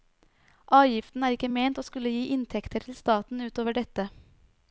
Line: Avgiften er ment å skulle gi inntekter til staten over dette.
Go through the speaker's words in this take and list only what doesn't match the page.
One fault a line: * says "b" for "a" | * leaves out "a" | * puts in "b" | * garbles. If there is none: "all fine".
* puts in "ikke"
* puts in "ut"